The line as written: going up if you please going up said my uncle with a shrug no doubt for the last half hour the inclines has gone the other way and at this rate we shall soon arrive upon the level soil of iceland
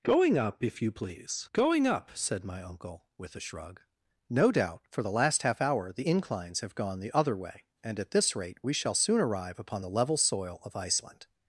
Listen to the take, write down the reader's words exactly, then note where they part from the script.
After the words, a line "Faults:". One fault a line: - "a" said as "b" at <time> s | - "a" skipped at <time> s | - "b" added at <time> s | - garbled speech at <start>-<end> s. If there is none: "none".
going up if you please going up said my uncle with a shrug no doubt for the last half hour the inclines have gone the other way and at this rate we shall soon arrive upon the level soil of iceland
Faults:
- "has" said as "have" at 6.6 s